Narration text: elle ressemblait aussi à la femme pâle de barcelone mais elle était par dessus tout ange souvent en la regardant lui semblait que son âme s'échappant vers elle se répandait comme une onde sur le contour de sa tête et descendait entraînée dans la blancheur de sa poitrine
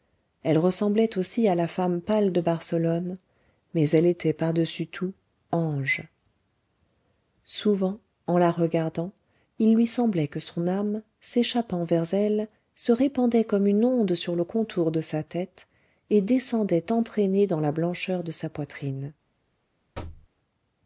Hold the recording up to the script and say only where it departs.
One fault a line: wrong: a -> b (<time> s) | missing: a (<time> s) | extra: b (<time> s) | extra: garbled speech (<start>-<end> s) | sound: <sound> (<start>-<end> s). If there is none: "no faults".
extra: il (9.6 s)
sound: thud (19.9-20.3 s)